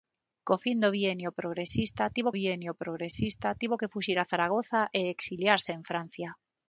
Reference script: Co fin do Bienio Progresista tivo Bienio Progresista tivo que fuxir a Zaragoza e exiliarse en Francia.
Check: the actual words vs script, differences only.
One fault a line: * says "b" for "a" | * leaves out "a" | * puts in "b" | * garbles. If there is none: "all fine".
all fine